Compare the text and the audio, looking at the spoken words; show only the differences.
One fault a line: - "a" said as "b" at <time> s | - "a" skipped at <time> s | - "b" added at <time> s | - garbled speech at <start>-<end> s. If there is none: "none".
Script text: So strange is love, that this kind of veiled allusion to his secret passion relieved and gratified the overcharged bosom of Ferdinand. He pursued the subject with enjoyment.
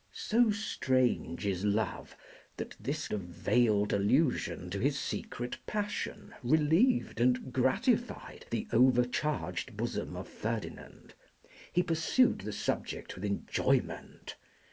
- "kind" skipped at 3.1 s